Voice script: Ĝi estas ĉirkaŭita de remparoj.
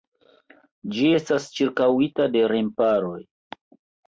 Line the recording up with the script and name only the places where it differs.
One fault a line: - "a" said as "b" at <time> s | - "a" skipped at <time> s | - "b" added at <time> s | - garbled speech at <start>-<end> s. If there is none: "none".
none